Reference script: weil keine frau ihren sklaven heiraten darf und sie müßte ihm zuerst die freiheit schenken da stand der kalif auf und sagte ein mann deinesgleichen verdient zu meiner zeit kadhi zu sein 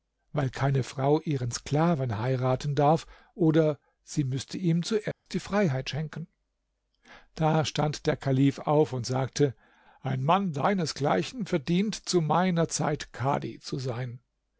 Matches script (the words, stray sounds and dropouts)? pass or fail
fail